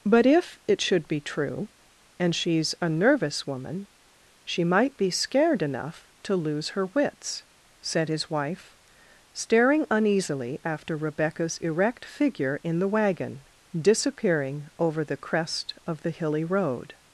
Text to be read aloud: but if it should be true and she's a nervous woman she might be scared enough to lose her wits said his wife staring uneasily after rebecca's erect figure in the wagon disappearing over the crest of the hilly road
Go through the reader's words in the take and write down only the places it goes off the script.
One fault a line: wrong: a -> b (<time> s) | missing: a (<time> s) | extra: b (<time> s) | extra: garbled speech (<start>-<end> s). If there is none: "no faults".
no faults